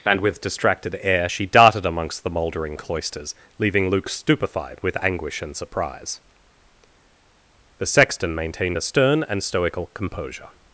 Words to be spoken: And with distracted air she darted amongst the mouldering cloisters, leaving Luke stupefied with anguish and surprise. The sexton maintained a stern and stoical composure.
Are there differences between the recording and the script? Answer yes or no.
no